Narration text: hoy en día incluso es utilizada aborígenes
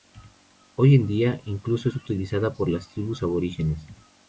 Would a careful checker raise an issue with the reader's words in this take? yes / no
yes